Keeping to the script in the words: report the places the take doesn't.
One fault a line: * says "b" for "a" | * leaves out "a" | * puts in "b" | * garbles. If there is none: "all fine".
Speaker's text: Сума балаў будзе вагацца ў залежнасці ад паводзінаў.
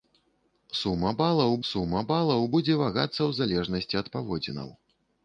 * puts in "сума балаў"